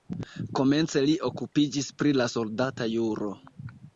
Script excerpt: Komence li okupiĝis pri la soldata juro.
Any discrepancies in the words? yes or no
no